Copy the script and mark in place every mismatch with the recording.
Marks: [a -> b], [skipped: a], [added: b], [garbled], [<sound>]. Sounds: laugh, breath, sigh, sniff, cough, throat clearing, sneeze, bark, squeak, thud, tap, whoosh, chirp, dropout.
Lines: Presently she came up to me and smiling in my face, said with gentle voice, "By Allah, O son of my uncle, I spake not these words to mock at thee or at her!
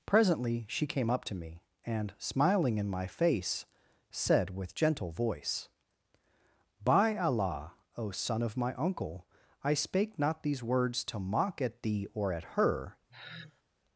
Presently she came up to me and smiling in my face, said with gentle voice, "By Allah, O son of my uncle, I spake not these words to mock at thee or at her! [sigh]